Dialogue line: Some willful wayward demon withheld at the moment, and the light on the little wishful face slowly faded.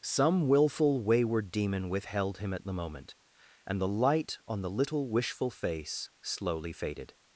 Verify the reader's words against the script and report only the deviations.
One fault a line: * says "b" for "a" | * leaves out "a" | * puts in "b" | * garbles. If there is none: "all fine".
* puts in "him"